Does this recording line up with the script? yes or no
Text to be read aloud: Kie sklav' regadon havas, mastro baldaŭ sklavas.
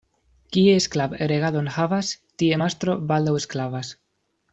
no